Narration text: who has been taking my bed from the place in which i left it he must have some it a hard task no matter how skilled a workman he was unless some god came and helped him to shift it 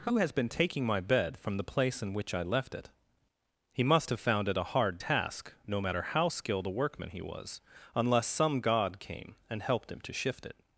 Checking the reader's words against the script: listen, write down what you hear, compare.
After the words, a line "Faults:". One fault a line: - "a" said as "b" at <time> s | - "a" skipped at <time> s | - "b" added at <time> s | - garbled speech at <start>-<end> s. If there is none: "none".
who has been taking my bed from the place in which i left it he must have found it a hard task no matter how skilled a workman he was unless some god came and helped him to shift it
Faults:
- "some" said as "found" at 4.2 s